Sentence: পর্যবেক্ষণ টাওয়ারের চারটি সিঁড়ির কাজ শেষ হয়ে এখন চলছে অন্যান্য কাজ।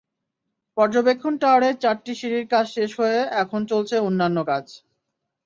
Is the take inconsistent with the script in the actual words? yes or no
no